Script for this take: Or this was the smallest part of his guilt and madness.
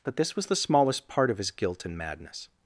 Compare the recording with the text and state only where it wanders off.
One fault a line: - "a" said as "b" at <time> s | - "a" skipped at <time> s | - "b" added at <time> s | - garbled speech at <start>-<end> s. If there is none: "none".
- "Or" said as "But" at 0.0 s